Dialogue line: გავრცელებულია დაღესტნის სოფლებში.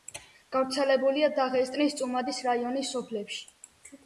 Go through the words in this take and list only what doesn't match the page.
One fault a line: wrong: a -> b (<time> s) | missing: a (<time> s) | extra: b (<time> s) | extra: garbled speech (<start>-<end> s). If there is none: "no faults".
extra: წუმადის რაიონის (2.0 s)